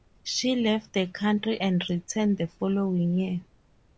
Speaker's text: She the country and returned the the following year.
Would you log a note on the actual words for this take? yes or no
yes